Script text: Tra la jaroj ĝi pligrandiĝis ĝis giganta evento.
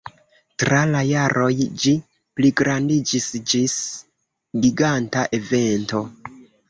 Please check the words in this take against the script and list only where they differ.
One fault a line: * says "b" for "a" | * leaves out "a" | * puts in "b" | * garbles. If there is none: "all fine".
all fine